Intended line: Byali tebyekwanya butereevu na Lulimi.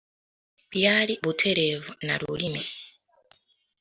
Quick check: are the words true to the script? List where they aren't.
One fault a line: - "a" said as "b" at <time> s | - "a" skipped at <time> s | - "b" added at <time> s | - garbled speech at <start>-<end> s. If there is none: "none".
- "tebyekwanya" skipped at 1.1 s